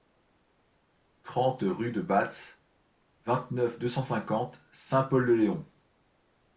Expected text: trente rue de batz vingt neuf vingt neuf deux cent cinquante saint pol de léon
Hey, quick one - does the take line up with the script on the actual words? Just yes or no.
no